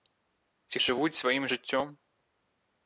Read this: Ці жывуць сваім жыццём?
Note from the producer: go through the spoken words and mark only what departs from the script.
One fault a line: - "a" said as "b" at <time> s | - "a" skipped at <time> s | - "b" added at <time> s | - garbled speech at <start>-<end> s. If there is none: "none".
none